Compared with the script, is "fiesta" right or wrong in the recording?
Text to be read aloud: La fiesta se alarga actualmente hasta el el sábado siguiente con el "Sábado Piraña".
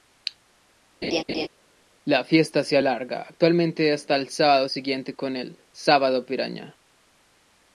right